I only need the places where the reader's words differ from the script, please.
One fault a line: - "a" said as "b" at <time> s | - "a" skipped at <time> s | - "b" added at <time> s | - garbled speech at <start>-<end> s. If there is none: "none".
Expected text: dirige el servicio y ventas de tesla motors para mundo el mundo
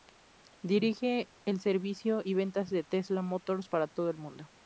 - "mundo" said as "todo" at 3.9 s